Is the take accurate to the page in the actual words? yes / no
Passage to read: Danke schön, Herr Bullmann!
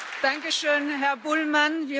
yes